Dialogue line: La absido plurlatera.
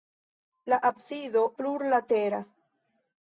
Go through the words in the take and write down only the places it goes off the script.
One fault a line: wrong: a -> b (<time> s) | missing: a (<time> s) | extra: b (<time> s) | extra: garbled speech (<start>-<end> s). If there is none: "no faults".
no faults